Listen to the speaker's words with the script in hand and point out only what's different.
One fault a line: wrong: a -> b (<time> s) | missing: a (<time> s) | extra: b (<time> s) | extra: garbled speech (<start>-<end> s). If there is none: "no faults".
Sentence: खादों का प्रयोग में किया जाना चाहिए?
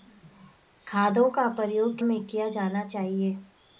no faults